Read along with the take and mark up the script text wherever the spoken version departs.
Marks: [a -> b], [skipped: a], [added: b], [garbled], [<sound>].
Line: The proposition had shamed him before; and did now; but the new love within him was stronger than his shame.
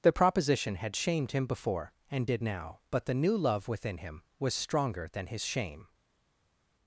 The proposition had shamed him before; and did now; but the new love within him was stronger than his shame.